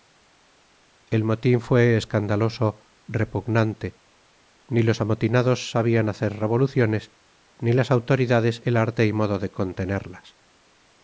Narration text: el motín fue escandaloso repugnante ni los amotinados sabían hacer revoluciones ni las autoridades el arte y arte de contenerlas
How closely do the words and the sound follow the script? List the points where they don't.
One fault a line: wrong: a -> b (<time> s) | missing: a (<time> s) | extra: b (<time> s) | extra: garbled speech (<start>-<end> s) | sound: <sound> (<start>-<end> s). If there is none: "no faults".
wrong: arte -> modo (9.1 s)